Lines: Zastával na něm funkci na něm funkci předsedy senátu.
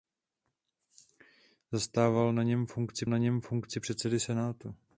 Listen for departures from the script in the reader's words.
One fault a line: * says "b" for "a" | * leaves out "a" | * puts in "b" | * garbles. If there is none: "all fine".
all fine